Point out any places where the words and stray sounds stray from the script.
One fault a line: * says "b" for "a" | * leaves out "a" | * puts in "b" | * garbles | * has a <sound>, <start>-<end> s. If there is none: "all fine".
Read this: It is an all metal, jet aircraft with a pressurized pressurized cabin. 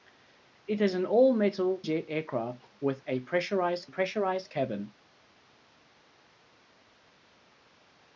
all fine